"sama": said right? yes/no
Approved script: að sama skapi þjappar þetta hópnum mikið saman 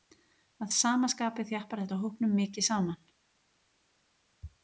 yes